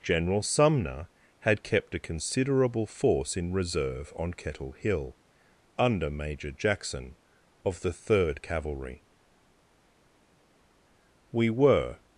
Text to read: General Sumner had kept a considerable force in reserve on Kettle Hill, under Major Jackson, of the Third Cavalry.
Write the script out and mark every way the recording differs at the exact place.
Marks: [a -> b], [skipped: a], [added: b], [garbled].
General Sumner had kept a considerable force in reserve on Kettle Hill, under Major Jackson, of the Third Cavalry. [added: We were]